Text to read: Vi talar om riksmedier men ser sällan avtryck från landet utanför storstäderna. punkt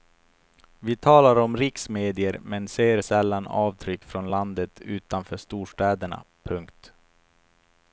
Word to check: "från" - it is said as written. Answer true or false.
true